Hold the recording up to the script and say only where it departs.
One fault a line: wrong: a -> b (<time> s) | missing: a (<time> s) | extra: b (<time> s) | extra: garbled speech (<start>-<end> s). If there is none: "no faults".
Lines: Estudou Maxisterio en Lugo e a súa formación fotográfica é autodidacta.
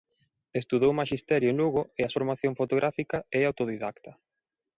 missing: súa (2.1 s)